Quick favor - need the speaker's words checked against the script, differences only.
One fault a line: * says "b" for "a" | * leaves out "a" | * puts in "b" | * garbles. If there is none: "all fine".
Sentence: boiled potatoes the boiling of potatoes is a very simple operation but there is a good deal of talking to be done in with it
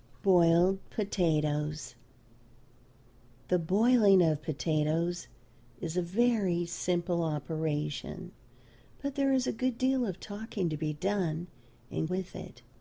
all fine